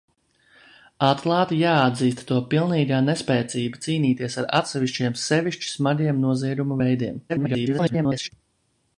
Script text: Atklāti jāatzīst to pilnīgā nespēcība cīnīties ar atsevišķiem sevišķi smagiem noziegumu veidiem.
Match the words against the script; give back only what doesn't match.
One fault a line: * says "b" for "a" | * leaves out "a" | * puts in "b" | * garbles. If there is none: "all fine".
* garbles